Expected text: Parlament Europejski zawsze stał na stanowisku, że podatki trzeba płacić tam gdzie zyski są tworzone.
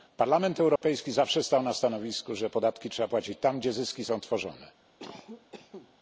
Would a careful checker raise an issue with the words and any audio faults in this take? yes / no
yes